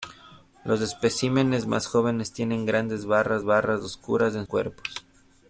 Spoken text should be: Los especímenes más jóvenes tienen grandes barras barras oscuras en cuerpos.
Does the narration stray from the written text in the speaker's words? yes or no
no